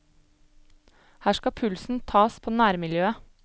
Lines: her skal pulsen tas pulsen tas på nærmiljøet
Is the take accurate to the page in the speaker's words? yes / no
no